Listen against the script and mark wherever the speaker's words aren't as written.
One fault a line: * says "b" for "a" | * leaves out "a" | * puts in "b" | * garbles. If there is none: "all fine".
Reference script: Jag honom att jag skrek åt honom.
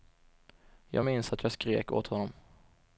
* says "minns" for "honom"